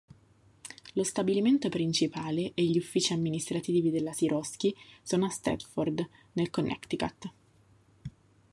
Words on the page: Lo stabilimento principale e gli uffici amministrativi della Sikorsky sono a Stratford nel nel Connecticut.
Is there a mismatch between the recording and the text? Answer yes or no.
yes